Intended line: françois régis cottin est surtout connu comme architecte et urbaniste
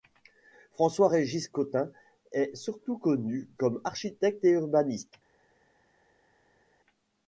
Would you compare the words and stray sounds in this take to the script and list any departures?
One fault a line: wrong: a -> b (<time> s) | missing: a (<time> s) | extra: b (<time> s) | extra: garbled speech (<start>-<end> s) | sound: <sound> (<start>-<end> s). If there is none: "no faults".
no faults